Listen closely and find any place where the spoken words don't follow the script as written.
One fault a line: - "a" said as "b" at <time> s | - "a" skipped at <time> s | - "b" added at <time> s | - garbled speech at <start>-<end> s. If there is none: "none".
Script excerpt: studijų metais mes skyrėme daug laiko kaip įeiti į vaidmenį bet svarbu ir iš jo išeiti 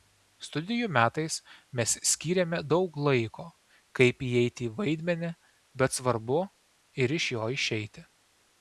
none